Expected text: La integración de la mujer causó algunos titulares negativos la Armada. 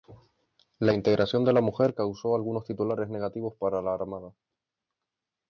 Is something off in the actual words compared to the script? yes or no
yes